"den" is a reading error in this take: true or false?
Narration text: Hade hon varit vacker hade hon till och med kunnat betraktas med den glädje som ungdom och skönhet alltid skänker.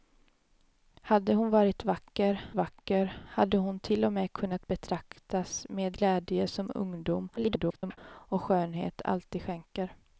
true